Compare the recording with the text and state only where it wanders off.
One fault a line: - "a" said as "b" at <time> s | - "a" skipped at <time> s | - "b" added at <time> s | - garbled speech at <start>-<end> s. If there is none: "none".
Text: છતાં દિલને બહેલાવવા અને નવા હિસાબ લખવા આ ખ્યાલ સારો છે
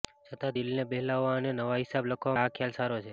none